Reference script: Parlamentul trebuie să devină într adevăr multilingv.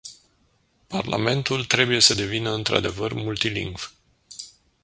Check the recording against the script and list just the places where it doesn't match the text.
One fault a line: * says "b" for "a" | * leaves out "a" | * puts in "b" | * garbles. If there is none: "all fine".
all fine